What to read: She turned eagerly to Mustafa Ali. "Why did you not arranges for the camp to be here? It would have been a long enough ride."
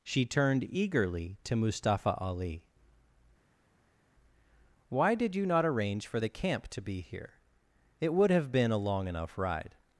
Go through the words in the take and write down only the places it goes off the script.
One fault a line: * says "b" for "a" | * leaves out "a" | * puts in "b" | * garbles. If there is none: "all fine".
* says "arrange" for "arranges"